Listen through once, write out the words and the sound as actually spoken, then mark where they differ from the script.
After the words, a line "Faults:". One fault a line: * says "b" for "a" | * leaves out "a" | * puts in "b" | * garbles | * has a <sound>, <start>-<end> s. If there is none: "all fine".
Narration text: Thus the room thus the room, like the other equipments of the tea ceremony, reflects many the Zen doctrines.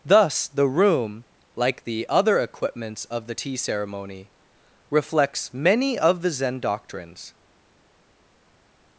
Thus the room, like the other equipments of the tea ceremony, reflects many of the Zen doctrines.
Faults:
* leaves out "thus the room"
* puts in "of"